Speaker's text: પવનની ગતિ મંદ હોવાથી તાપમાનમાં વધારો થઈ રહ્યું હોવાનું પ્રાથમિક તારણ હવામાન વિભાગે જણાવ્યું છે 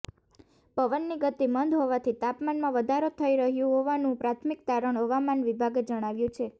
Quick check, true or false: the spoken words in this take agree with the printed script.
true